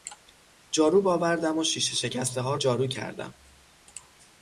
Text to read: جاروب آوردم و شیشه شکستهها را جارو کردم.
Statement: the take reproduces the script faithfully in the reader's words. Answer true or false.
false